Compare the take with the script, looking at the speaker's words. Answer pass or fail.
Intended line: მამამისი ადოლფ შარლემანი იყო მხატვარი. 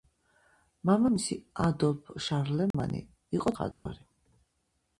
pass